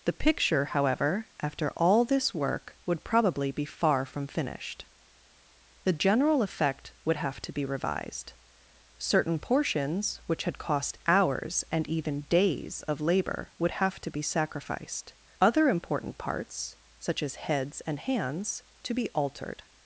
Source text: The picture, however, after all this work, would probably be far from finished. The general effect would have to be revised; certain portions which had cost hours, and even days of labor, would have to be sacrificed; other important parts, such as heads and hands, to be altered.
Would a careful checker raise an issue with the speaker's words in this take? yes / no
no